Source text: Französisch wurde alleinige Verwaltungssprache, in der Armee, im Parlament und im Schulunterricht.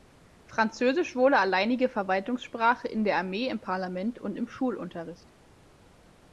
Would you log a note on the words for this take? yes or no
no